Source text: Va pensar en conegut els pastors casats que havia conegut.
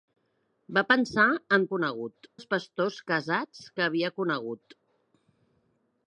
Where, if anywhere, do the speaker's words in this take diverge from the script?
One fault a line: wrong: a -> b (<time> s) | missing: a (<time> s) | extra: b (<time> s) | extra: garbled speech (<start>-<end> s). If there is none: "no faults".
no faults